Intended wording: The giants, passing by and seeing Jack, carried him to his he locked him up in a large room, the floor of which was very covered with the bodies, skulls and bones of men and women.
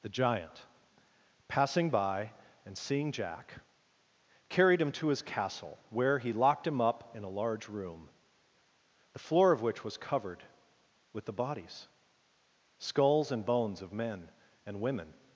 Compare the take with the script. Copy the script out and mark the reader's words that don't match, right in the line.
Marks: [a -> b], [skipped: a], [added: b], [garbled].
The [giants, -> giant] passing by and seeing Jack, carried him to his [added: castle where] he locked him up in a large room, the floor of which was [skipped: very] covered with the bodies, skulls and bones of men and women.